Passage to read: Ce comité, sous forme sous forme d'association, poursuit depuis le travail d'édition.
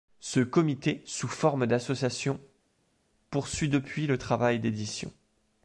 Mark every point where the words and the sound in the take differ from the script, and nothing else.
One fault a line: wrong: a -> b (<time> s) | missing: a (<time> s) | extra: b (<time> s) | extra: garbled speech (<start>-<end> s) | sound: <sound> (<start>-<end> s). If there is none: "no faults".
missing: sous forme (1.7 s)